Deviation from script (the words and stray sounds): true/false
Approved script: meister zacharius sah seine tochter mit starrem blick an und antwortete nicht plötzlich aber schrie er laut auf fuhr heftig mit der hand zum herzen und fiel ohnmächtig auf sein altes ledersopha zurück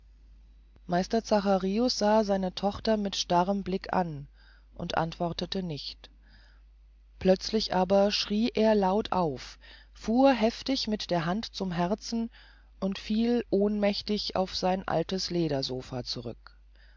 false